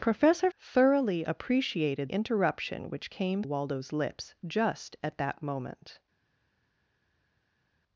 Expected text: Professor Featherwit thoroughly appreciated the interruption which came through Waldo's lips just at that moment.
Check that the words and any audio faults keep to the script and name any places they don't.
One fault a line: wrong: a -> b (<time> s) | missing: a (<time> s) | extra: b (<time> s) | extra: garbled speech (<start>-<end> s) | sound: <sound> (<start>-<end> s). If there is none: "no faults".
missing: Featherwit (0.5 s)
missing: the (2.1 s)
missing: through (3.4 s)